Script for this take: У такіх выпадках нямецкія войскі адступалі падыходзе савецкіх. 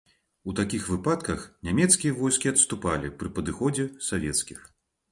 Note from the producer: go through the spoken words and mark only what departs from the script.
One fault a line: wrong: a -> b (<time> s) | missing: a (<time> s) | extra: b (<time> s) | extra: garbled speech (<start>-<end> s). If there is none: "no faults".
extra: пры (3.2 s)